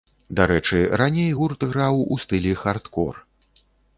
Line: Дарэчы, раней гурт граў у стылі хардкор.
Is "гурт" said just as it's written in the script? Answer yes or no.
yes